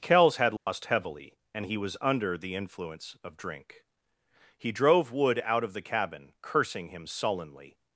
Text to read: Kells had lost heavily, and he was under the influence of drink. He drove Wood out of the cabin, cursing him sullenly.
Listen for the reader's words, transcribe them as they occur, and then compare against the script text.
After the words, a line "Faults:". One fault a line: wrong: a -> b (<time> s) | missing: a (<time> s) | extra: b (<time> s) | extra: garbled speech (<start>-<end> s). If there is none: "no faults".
Kells had lost heavily, and he was under the influence of drink. He drove Wood out of the cabin, cursing him sullenly.
Faults:
no faults